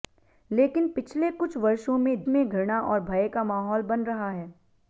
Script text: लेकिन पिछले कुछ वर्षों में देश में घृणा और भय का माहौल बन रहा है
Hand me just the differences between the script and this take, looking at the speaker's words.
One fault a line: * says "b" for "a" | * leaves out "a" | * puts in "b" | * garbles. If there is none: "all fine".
* leaves out "देश"